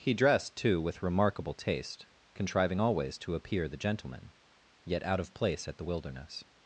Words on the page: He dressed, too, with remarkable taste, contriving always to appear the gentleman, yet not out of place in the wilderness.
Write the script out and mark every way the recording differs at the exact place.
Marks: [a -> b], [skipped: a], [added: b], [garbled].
He dressed, too, with remarkable taste, contriving always to appear the gentleman, yet [skipped: not] out of place [in -> at] the wilderness.